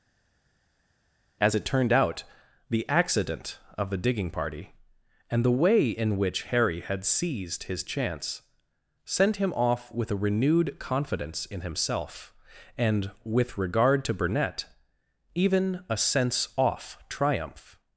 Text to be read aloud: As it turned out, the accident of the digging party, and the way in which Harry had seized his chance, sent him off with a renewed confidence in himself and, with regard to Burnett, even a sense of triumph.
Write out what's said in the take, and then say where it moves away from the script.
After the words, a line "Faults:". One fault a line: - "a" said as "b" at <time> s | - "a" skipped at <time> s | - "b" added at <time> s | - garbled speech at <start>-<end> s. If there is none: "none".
As it turned out, the accident of the digging party, and the way in which Harry had seized his chance, sent him off with a renewed confidence in himself and, with regard to Burnett, even a sense off triumph.
Faults:
- "of" said as "off" at 16.6 s